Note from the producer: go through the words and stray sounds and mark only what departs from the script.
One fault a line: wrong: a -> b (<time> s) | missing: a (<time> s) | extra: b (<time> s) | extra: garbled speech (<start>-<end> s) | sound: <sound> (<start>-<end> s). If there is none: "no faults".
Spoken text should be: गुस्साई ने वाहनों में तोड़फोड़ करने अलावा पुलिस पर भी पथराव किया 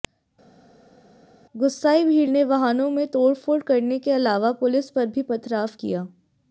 extra: भीड़ (2.0 s)
extra: के (4.0 s)